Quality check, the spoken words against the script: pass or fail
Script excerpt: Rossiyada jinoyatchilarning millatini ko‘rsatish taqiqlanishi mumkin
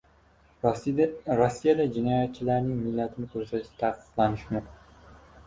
pass